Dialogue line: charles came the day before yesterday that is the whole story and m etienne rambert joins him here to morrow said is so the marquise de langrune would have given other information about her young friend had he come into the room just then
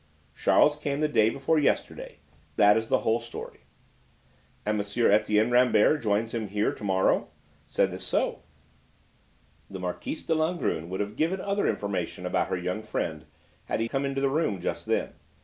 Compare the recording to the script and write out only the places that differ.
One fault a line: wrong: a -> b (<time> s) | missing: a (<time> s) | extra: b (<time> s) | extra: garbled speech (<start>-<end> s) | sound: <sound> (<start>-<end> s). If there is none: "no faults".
no faults